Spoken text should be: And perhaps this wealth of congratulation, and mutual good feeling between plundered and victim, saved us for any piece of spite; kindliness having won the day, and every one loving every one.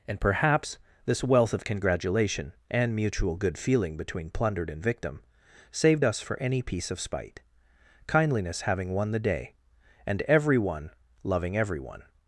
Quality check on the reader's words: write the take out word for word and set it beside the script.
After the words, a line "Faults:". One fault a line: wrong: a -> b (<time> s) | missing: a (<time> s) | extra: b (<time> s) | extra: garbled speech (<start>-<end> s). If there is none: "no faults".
And perhaps this wealth of congratulation, and mutual good feeling between plundered and victim, saved us for any piece of spite; kindliness having won the day, and every one loving every one.
Faults:
no faults